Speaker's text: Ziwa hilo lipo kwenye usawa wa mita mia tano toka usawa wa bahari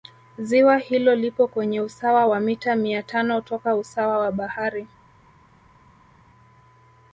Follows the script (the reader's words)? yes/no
yes